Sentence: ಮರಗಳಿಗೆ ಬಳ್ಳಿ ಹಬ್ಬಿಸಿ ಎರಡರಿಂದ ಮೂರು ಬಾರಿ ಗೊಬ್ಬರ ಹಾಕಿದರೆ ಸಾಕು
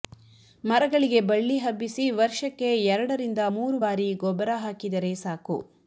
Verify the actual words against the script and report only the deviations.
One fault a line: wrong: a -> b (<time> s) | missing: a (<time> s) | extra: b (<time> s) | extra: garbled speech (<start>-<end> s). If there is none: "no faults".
extra: ವರ್ಷಕ್ಕೆ (2.2 s)